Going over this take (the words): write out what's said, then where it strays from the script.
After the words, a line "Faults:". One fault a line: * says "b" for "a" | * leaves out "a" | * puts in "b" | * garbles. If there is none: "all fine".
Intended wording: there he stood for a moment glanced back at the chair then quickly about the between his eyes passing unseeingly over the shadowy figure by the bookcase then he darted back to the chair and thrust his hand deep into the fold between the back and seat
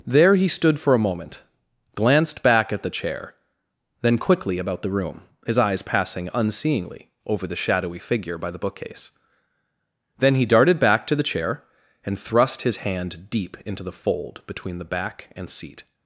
there he stood for a moment glanced back at the chair then quickly about the room his eyes passing unseeingly over the shadowy figure by the bookcase then he darted back to the chair and thrust his hand deep into the fold between the back and seat
Faults:
* says "room" for "between"